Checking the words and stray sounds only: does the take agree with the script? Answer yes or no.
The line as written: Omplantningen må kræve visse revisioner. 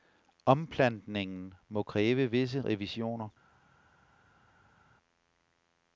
yes